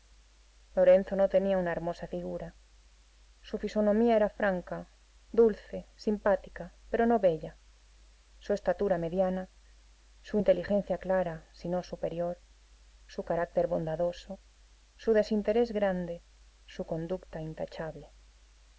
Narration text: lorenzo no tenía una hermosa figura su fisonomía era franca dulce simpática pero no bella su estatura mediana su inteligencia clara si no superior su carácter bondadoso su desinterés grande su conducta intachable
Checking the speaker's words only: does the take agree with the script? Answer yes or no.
yes